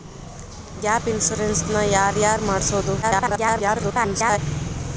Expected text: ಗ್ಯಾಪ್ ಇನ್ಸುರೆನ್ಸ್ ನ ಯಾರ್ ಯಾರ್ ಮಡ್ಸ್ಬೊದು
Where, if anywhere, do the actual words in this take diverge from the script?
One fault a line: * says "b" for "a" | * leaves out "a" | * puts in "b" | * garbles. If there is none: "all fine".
* garbles